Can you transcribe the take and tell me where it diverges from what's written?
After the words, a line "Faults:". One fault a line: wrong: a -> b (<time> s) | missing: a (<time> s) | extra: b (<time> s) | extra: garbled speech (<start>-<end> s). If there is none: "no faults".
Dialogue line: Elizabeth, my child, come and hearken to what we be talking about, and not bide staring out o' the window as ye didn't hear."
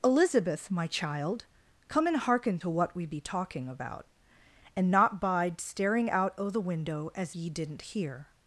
Elizabeth, my child, come and hearken to what we be talking about, and not bide staring out o' the window as ye didn't hear."
Faults:
no faults